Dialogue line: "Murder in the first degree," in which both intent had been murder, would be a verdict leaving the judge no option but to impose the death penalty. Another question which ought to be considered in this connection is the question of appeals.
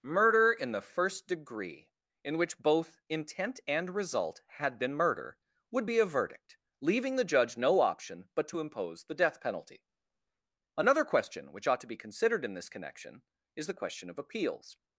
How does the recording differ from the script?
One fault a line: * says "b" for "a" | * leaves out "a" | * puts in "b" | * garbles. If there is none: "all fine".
* puts in "and result"